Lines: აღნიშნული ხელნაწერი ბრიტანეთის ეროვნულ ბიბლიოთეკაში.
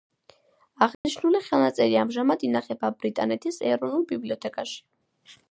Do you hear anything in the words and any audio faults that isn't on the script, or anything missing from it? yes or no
yes